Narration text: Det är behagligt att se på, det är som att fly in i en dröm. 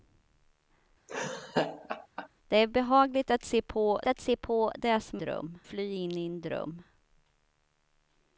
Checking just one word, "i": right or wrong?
right